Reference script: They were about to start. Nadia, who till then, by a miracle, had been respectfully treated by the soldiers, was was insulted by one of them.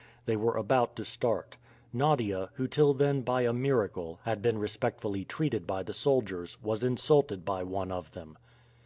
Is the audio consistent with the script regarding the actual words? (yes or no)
no